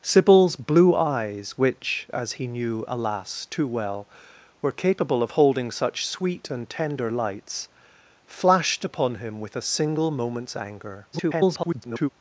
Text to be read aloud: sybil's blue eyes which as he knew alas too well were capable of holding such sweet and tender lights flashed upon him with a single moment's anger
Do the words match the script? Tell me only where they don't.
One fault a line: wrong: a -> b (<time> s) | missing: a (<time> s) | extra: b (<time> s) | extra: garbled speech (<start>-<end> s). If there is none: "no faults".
extra: garbled speech (11.1-12.1 s)